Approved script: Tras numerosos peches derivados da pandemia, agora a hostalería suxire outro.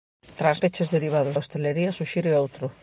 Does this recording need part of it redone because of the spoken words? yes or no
yes